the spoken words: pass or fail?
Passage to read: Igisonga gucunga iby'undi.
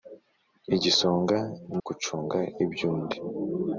pass